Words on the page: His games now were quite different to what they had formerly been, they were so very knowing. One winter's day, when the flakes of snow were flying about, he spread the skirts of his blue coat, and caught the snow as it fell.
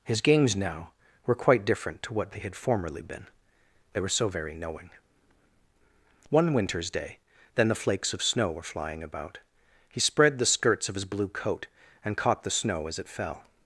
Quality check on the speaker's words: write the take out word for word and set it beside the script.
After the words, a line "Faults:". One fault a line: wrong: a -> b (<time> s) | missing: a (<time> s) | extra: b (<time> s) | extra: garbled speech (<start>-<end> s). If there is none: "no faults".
His games now were quite different to what they had formerly been, they were so very knowing. One winter's day, then the flakes of snow were flying about, he spread the skirts of his blue coat, and caught the snow as it fell.
Faults:
wrong: when -> then (7.5 s)